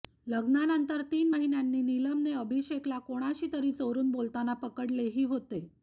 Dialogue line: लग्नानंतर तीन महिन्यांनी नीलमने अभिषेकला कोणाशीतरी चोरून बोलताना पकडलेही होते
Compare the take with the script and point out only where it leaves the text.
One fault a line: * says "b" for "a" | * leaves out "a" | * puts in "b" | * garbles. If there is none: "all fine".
all fine